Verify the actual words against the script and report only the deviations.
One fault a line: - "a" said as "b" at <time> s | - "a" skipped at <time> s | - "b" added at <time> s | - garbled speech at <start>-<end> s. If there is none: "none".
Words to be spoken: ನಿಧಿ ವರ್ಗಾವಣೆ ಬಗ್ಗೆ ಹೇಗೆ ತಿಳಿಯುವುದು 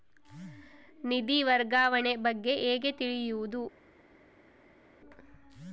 none